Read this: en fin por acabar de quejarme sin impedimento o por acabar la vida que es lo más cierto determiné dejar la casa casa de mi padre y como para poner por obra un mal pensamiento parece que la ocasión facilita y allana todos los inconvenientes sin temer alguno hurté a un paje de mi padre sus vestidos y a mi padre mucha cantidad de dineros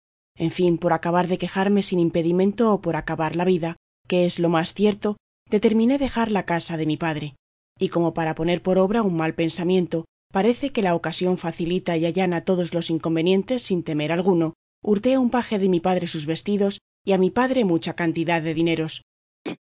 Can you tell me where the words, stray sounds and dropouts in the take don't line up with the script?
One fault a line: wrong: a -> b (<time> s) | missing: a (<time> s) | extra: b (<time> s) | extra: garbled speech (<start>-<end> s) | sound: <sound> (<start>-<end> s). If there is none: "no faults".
missing: casa (6.8 s)
sound: throat clearing (19.4-19.6 s)